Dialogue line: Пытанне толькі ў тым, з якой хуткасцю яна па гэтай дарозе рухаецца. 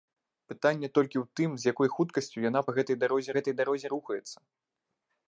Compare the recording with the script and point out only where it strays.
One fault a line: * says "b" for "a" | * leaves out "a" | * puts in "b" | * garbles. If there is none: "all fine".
* puts in "гэтай дарозе"